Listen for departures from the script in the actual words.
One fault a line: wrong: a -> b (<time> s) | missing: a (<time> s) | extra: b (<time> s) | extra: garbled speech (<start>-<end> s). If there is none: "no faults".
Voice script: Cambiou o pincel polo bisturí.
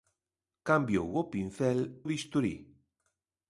missing: polo (1.8 s)